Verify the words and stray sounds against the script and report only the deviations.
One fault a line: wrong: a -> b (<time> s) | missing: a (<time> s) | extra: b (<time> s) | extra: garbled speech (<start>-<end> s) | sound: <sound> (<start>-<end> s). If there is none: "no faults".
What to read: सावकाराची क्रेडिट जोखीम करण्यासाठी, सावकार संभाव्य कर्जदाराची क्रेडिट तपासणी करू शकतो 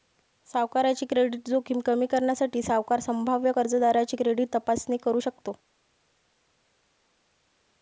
extra: कमी (1.9 s)